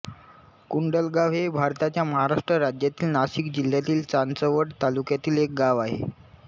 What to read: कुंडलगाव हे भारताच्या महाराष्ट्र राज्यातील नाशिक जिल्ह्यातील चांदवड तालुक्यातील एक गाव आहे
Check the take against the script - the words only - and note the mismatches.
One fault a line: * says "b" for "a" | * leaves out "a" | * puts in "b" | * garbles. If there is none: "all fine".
all fine